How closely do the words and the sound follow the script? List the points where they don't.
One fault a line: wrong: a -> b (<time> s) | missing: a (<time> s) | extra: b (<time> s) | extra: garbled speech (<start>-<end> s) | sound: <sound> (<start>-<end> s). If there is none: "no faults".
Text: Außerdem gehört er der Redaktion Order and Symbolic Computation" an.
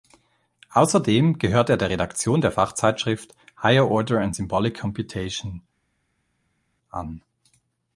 extra: der Fachzeitschrift Higher (2.4 s)